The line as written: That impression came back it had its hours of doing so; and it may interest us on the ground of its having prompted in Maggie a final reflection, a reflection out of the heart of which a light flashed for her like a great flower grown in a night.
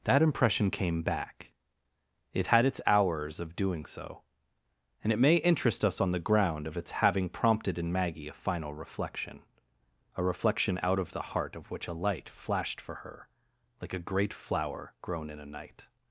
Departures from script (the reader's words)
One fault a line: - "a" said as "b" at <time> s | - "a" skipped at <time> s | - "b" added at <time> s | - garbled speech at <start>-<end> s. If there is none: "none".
none